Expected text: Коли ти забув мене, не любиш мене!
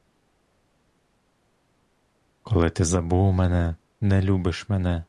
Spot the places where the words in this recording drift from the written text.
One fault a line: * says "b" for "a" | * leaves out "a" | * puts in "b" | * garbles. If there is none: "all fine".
all fine